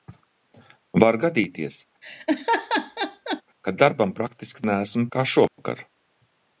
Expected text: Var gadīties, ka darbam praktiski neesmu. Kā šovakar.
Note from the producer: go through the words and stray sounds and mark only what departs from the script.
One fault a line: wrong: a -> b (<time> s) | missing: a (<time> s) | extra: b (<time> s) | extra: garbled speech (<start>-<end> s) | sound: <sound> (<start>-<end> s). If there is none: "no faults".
sound: laugh (2.0-3.4 s)
sound: dropout (5.5-5.6 s)